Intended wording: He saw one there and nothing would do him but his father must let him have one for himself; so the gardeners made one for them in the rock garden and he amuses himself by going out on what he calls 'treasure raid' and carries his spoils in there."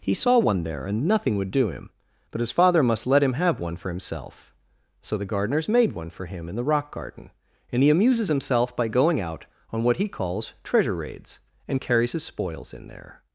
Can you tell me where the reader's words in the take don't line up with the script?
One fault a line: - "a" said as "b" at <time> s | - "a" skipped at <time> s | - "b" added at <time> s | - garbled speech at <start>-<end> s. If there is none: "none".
- "them" said as "him" at 6.3 s
- "raid" said as "raids" at 11.0 s